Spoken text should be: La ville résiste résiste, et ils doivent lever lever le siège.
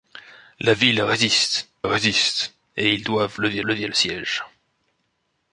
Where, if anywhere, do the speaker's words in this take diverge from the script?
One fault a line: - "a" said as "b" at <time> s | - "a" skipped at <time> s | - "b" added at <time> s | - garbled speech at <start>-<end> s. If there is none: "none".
none